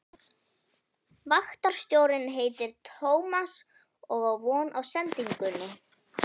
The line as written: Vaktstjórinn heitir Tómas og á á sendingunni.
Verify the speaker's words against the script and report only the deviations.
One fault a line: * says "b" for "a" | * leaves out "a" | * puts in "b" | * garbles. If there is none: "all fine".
* puts in "von"